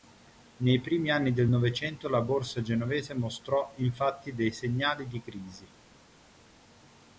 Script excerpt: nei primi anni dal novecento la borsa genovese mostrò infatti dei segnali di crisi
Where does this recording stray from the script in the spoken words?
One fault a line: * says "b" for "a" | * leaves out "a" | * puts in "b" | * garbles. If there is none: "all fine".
* says "del" for "dal"